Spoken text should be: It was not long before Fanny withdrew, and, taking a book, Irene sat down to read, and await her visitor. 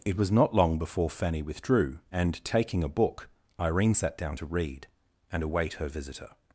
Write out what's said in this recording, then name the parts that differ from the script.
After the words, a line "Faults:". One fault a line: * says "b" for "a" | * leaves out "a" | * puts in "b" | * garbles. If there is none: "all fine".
It was not long before Fanny withdrew, and, taking a book, Irene sat down to read, and await her visitor.
Faults:
all fine